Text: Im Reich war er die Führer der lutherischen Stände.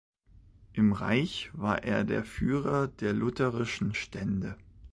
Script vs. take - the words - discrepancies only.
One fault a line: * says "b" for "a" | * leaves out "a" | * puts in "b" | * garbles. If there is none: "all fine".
* says "der" for "die"